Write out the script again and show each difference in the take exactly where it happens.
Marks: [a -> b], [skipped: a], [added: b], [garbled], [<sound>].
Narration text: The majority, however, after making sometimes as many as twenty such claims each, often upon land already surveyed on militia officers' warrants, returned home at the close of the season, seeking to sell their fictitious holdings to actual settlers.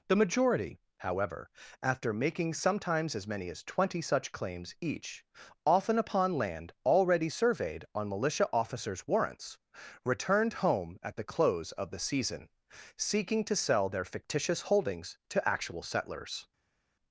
The majority, however, after making sometimes as many as twenty such claims each, often upon land already surveyed on militia officers' warrants, returned home at the close of the season, seeking to sell their fictitious holdings to actual settlers.